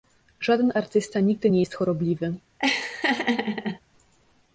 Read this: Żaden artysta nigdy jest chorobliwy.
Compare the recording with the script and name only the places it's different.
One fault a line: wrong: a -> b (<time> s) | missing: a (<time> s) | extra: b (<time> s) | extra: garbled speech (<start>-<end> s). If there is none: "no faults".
extra: nie (1.5 s)